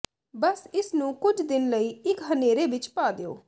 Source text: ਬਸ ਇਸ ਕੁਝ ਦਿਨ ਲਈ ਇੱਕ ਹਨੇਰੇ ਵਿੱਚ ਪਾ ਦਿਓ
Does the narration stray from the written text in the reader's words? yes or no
yes